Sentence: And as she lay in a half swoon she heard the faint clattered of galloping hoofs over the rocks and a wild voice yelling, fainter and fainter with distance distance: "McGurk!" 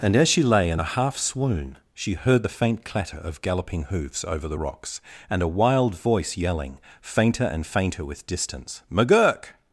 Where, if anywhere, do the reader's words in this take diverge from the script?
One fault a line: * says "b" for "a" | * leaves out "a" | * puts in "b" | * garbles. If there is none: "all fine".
* says "clatter" for "clattered"
* leaves out "distance"